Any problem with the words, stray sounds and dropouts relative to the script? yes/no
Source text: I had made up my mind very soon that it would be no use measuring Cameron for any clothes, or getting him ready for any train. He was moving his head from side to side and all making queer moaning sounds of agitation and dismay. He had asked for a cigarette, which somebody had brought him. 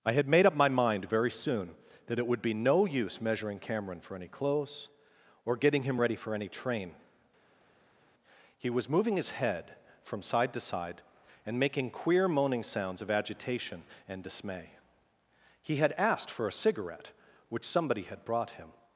yes